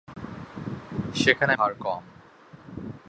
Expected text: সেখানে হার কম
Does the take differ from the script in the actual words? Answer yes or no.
no